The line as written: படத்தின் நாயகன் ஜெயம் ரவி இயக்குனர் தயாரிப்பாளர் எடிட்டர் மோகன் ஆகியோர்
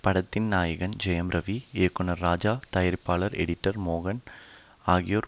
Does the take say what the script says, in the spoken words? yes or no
no